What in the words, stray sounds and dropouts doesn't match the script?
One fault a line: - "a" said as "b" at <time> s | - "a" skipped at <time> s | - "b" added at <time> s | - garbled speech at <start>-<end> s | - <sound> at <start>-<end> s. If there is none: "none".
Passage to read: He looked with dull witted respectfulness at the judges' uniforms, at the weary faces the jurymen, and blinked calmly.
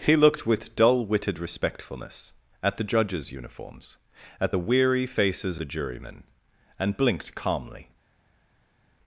none